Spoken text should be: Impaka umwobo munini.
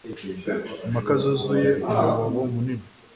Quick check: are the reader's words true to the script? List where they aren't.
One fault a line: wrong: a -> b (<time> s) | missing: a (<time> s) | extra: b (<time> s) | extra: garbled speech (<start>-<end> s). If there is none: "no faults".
extra: zuzuye (1.2 s)